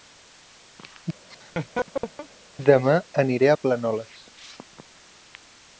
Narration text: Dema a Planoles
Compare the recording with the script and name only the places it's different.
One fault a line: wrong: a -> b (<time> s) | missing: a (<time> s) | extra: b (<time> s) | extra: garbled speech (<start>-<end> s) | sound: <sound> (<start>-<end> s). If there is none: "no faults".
sound: laugh (1.3-2.3 s)
extra: aniré (3.2 s)